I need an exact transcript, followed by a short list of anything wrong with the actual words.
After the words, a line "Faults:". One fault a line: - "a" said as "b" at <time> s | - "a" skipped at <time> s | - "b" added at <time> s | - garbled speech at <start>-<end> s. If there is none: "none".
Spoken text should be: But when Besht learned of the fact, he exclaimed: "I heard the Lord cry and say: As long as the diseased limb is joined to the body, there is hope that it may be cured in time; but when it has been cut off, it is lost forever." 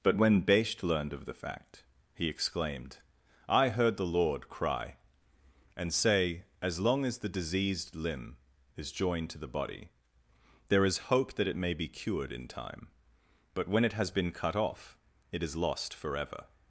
But when Besht learned of the fact, he exclaimed: "I heard the Lord cry and say: As long as the diseased limb is joined to the body, there is hope that it may be cured in time; but when it has been cut off, it is lost forever."
Faults:
none